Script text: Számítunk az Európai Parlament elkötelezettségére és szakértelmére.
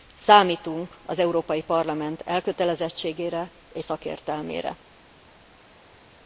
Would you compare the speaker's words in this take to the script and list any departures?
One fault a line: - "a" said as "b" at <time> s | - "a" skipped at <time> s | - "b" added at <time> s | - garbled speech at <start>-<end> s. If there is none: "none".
none